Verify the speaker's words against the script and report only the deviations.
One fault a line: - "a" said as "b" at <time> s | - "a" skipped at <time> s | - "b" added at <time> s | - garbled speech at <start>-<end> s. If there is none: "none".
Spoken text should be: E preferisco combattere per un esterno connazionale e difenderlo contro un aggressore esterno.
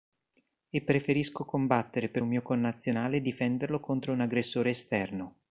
- "esterno" said as "mio" at 2.3 s